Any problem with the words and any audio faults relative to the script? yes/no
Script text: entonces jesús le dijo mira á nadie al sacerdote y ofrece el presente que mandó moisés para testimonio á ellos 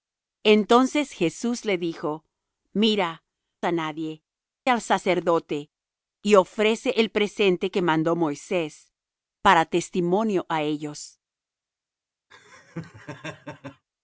yes